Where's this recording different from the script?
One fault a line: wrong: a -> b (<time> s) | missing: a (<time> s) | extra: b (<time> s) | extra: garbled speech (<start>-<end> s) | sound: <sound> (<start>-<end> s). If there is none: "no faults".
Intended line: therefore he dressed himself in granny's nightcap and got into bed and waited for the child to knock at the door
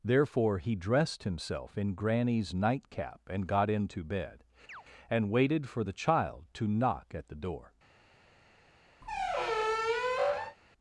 sound: chirp (4.7-4.8 s)
sound: squeak (9.0-10.6 s)